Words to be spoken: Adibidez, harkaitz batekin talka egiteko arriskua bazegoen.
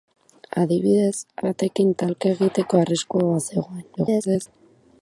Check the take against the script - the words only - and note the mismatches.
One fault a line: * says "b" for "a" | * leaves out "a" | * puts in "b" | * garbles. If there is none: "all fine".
* leaves out "harkaitz"
* garbles